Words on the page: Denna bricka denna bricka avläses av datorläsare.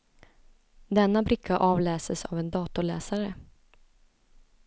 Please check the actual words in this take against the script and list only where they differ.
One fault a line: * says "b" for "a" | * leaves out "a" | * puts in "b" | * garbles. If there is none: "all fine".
* leaves out "denna bricka"
* puts in "en"